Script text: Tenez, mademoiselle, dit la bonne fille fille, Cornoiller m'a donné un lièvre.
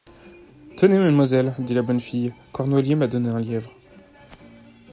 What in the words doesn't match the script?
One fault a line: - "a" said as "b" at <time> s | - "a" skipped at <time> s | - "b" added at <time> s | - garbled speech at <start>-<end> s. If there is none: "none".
- "fille" skipped at 2.3 s